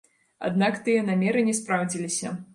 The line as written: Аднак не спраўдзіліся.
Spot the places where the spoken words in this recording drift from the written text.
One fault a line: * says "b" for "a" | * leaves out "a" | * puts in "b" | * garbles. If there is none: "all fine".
* puts in "тыя намеры"